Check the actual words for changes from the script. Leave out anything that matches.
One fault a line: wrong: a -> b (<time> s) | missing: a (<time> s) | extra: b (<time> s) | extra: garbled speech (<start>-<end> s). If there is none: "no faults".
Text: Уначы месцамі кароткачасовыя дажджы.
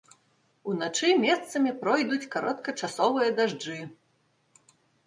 extra: пройдуць (1.8 s)